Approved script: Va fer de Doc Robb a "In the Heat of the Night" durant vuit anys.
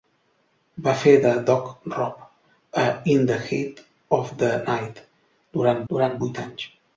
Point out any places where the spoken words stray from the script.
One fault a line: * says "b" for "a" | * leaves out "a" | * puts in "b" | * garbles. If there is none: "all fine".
* puts in "durant"